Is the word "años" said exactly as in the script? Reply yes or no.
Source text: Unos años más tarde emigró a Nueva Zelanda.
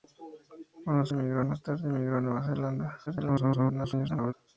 no